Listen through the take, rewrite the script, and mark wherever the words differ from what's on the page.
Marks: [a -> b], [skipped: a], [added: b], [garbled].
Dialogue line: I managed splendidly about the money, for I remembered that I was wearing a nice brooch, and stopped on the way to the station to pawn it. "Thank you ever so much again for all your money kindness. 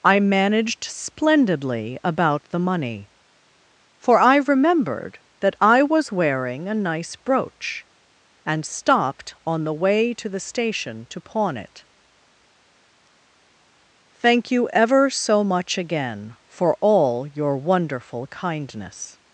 I managed splendidly about the money, for I remembered that I was wearing a nice brooch, and stopped on the way to the station to pawn it. "Thank you ever so much again for all your [money -> wonderful] kindness.